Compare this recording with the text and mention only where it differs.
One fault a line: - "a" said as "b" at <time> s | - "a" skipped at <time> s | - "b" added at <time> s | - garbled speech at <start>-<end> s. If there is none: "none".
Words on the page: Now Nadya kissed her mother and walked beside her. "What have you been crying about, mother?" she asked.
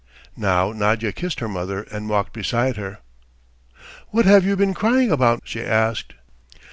- "mother" skipped at 5.4 s